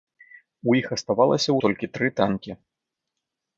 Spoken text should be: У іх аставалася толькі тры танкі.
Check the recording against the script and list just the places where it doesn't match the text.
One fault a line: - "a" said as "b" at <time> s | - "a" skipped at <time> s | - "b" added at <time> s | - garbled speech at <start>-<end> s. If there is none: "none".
none